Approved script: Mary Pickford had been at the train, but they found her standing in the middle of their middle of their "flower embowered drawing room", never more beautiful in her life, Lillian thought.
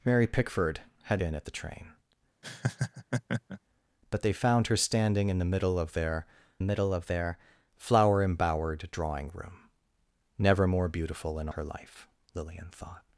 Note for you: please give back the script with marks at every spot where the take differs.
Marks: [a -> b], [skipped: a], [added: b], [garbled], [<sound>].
Mary Pickford had been at the train, [laugh] but they found her standing in the middle of their middle of their "flower embowered drawing room", never more beautiful in her life, Lillian thought.